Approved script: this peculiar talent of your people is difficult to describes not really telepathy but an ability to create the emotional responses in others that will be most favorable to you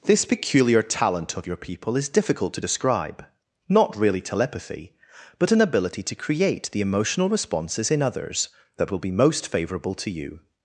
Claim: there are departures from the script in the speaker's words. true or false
true